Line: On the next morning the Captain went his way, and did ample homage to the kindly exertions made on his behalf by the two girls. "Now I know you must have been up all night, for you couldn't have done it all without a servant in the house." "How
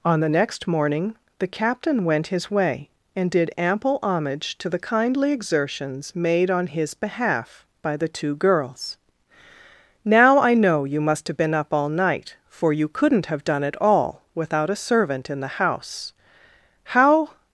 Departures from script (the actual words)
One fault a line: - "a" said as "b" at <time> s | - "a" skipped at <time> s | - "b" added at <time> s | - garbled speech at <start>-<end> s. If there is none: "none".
none